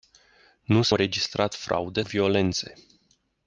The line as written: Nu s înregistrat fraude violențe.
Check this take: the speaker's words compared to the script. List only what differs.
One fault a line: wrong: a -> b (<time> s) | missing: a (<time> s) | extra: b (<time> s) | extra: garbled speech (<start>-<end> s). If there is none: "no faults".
no faults